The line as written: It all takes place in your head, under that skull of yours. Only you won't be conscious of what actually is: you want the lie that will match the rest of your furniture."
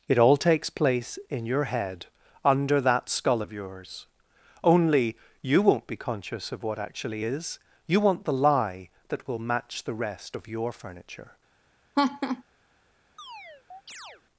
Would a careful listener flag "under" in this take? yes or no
no